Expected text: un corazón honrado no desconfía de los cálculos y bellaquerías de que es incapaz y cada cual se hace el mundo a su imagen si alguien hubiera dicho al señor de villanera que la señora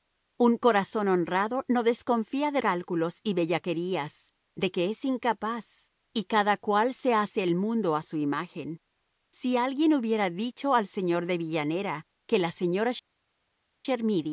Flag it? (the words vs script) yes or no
yes